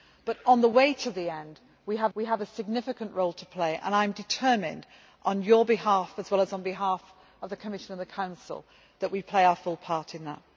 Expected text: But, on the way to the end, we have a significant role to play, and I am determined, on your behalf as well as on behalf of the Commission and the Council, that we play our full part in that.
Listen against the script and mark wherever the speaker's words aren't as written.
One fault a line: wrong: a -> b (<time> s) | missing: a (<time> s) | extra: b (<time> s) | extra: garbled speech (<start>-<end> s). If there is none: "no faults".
extra: we have (2.1 s)